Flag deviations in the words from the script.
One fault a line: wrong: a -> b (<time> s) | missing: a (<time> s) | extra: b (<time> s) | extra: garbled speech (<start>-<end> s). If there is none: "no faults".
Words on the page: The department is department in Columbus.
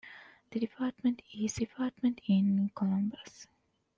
no faults